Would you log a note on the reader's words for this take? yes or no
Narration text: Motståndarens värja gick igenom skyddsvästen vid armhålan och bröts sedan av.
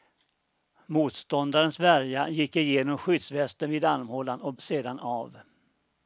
yes